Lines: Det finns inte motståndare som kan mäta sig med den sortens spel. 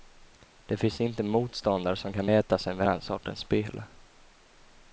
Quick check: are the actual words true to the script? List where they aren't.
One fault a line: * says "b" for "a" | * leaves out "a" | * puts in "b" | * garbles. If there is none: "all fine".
all fine